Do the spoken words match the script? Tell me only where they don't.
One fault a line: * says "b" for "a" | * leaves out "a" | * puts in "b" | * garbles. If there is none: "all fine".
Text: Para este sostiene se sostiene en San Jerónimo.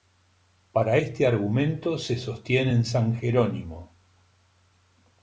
* says "argumento" for "sostiene"